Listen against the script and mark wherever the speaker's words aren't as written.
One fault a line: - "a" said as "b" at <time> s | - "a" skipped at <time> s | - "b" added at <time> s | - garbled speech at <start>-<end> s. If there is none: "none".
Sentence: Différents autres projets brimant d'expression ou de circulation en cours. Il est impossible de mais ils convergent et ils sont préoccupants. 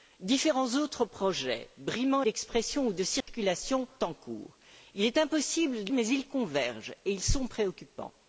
none